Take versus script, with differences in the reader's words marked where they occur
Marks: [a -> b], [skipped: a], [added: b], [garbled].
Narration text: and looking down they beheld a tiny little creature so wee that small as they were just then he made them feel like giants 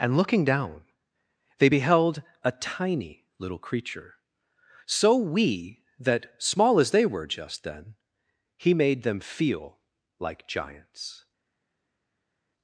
and looking down they beheld a tiny little creature so wee that small as they were just then he made them feel like giants